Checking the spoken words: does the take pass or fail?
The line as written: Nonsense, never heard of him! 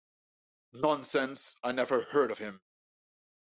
fail